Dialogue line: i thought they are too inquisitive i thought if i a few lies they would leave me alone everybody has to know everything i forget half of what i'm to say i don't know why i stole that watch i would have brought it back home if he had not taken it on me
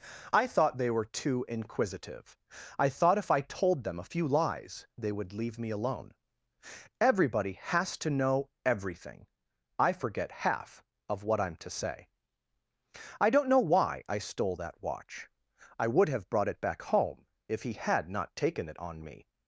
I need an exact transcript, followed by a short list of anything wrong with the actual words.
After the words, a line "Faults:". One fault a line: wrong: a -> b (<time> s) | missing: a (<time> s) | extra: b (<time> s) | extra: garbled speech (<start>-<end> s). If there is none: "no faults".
i thought they were too inquisitive i thought if i told them a few lies they would leave me alone everybody has to know everything i forget half of what i'm to say i don't know why i stole that watch i would have brought it back home if he had not taken it on me
Faults:
wrong: are -> were (0.9 s)
extra: told them (3.4 s)